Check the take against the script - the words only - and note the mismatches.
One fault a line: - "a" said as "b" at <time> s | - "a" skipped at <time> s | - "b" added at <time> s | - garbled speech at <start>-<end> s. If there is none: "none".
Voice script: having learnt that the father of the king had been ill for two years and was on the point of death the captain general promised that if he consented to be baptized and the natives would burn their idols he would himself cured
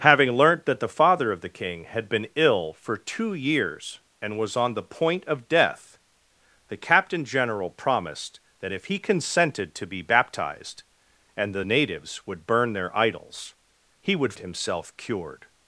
none